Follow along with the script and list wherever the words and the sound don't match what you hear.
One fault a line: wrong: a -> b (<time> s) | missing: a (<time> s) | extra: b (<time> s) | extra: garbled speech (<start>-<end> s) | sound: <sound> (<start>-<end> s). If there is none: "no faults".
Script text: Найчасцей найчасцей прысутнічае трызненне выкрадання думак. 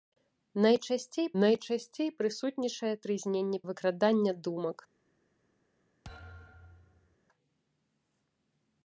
sound: thud (6.0-7.2 s)